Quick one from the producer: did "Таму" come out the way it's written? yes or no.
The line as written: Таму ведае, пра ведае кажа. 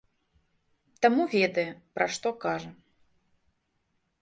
yes